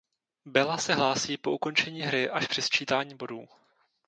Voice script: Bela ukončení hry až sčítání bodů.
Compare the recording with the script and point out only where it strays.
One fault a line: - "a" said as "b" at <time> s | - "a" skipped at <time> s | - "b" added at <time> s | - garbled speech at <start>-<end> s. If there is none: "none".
- "se hlásí po" added at 0.8 s
- "při" added at 2.5 s